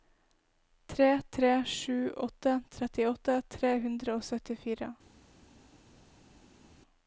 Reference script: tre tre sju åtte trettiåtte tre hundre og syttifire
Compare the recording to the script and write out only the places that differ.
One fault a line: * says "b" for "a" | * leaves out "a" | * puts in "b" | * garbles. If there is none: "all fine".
all fine